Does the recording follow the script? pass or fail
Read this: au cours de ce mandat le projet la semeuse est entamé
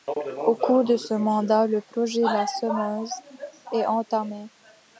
pass